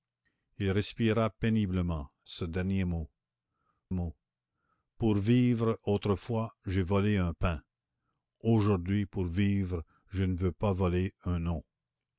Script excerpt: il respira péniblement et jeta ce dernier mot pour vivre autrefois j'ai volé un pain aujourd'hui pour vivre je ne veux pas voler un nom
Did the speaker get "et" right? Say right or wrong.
wrong